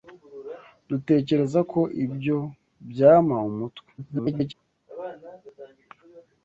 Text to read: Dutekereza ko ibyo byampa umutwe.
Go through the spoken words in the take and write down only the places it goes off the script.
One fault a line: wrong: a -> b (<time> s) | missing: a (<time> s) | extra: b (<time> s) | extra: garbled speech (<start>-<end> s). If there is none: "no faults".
extra: garbled speech (4.0-4.5 s)